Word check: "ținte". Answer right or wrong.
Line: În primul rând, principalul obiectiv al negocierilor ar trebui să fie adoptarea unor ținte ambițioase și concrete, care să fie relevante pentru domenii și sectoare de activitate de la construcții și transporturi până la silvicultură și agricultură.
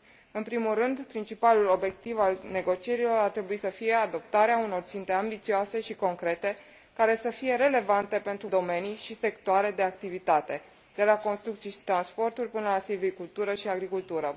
right